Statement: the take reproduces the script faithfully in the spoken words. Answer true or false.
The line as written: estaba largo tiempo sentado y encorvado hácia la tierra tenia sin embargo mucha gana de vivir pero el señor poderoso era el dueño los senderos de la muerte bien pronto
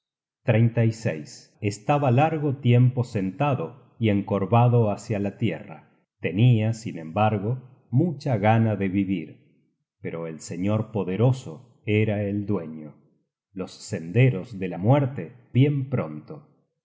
true